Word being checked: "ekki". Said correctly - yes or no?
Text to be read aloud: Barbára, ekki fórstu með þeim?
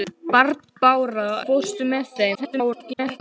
no